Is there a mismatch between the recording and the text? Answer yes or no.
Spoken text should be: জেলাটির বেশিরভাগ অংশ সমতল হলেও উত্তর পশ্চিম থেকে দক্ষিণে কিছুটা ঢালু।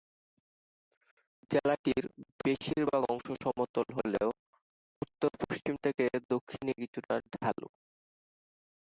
no